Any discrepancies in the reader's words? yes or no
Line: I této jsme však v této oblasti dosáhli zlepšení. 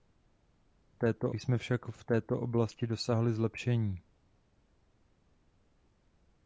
no